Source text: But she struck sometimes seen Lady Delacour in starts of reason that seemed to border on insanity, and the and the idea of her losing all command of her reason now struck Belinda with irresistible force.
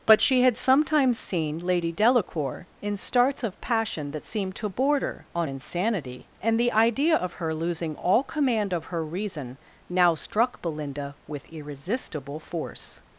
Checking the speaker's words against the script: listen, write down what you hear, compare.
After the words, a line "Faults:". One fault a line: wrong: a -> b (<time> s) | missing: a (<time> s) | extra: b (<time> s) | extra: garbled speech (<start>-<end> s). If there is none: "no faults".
But she had sometimes seen Lady Delacour in starts of passion that seemed to border on insanity, and the idea of her losing all command of her reason now struck Belinda with irresistible force.
Faults:
wrong: struck -> had (0.4 s)
wrong: reason -> passion (3.6 s)
missing: and the (6.7 s)